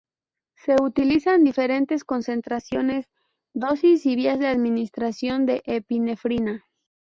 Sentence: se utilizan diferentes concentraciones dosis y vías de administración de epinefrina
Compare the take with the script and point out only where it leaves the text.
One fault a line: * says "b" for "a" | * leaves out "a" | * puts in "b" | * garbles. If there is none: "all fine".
all fine